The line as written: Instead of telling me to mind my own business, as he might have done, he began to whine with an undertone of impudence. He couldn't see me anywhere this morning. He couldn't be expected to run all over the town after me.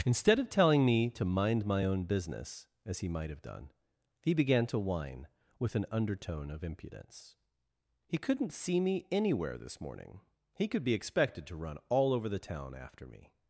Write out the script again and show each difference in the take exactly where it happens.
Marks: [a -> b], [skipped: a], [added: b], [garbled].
Instead of telling me to mind my own business, as he might have done, he began to whine with an undertone of impudence. He couldn't see me anywhere this morning. He [couldn't -> could] be expected to run all over the town after me.